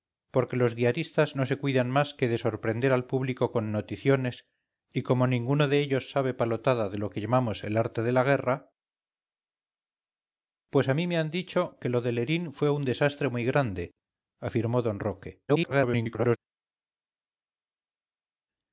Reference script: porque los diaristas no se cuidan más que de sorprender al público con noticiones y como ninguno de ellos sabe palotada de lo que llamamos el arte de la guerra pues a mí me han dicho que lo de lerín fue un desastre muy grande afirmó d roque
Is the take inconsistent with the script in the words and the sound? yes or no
yes